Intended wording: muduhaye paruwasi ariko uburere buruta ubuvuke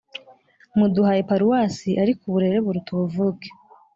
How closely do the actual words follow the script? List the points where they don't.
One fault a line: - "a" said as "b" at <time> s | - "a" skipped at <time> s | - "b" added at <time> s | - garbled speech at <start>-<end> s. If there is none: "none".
none